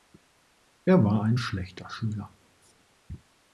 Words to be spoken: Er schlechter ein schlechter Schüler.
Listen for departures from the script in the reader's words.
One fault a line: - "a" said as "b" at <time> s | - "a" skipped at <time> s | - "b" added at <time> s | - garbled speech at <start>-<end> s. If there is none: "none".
- "schlechter" said as "war" at 1.0 s